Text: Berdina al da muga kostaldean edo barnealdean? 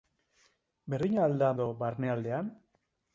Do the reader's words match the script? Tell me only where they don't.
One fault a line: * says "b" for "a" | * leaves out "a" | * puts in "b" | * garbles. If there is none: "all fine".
* leaves out "muga kostaldean"